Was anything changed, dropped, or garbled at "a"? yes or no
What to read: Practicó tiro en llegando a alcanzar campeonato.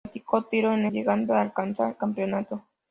no